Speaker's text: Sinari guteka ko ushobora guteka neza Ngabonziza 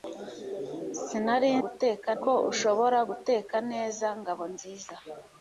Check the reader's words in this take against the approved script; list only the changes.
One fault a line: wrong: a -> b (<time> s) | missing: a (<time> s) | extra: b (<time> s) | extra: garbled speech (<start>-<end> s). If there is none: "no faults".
no faults